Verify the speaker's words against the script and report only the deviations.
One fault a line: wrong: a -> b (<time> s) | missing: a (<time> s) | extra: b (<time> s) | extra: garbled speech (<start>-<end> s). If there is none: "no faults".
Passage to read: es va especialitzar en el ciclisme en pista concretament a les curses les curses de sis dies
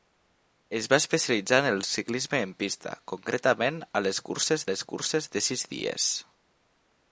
no faults